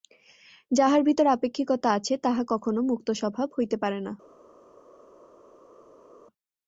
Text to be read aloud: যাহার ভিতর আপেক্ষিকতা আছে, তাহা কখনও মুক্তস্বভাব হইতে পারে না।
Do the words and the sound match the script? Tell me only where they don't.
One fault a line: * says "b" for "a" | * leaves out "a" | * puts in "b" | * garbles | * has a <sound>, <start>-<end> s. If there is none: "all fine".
all fine